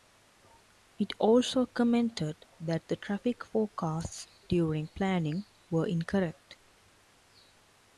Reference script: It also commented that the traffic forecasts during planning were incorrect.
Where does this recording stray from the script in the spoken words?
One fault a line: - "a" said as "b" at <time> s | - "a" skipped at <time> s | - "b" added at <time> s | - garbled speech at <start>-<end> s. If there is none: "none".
none